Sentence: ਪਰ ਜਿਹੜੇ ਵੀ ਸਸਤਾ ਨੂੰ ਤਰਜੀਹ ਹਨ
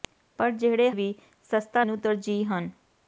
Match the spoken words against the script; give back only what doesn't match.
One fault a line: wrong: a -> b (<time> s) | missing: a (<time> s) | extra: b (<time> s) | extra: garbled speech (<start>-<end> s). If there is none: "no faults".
no faults